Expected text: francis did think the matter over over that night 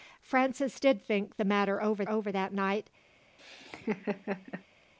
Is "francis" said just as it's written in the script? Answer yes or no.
yes